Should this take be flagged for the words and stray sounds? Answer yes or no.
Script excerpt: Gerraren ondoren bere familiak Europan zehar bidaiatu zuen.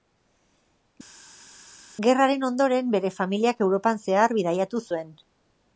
no